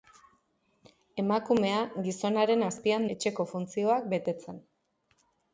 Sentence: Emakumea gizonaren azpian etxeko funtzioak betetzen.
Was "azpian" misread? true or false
false